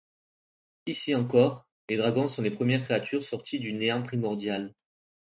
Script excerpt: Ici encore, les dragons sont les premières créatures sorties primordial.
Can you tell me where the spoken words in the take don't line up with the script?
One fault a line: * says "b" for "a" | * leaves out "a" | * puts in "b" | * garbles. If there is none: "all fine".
* puts in "du néant"